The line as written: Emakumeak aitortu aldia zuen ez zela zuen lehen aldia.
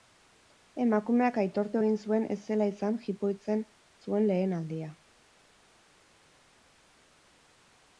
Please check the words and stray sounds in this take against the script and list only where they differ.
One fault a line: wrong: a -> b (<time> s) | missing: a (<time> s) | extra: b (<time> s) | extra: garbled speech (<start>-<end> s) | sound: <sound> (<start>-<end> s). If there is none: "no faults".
wrong: aldia -> egin (1.8 s)
extra: izan jipoitzen (2.7 s)